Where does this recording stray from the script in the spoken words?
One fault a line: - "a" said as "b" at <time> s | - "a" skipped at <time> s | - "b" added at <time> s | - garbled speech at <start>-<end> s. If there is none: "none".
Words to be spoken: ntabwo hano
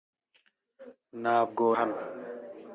none